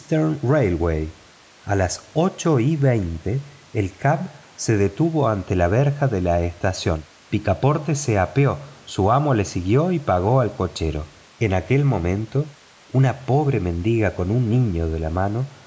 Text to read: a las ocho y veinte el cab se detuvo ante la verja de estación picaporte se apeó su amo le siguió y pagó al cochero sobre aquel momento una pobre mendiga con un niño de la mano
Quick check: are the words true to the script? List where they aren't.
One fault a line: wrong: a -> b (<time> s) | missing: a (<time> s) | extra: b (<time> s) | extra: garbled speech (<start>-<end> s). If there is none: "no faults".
extra: la (6.2 s)
wrong: sobre -> en (11.4 s)